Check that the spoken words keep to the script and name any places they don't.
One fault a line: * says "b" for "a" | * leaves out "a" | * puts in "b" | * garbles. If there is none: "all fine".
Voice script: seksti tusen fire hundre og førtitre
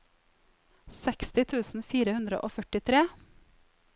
all fine